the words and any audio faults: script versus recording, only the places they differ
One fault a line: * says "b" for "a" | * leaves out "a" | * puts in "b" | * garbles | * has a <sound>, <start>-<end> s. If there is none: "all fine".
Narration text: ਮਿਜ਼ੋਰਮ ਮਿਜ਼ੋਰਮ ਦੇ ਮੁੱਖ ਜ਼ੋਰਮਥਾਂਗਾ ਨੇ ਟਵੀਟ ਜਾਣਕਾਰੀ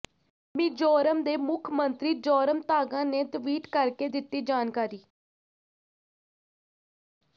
* leaves out "ਮਿਜ਼ੋਰਮ"
* puts in "ਮੰਤਰੀ"
* puts in "ਕਰਕੇ ਦਿੱਤੀ"